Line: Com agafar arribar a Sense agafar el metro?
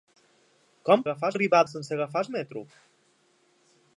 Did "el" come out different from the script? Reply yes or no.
no